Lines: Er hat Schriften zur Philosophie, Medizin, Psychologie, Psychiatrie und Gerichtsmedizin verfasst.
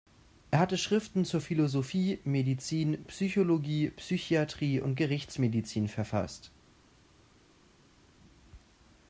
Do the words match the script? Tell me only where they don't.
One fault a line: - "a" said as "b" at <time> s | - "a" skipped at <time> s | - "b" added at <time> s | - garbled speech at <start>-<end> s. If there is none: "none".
- "hat" said as "hatte" at 0.6 s